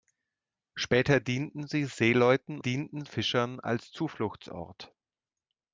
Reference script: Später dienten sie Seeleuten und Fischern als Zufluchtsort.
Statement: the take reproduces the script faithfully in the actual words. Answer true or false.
false